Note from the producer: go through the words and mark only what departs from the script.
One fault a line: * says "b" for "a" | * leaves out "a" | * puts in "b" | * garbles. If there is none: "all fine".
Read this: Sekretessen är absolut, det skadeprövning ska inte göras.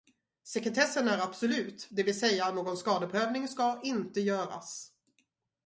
* puts in "vill säga någon"